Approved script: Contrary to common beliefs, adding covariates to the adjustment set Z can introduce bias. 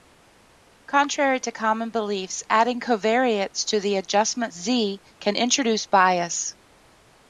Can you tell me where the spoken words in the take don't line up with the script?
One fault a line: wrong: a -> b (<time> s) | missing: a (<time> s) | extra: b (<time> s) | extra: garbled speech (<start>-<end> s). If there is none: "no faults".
missing: set (4.5 s)